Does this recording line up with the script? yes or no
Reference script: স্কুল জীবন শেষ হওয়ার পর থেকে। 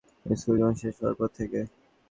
yes